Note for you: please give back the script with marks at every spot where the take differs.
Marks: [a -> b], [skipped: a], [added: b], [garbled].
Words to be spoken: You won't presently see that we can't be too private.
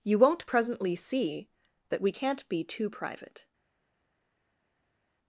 You won't presently see that we can't be too private.